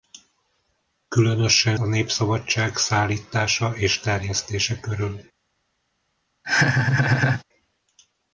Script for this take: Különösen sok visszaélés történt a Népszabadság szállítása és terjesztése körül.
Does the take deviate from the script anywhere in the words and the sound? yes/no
yes